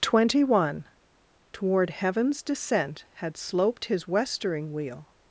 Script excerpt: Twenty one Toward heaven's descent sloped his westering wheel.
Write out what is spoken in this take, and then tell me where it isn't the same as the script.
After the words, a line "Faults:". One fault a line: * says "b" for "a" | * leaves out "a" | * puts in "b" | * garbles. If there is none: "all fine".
Twenty one Toward heaven's descent had sloped his westering wheel.
Faults:
* puts in "had"